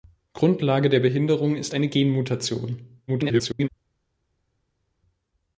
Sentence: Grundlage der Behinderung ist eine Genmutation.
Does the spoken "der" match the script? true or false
true